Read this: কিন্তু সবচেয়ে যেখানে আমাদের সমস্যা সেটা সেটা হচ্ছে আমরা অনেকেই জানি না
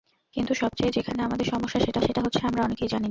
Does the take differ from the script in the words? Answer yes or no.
no